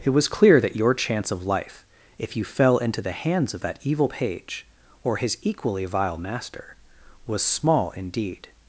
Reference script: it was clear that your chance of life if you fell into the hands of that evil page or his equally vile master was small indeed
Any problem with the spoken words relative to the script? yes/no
no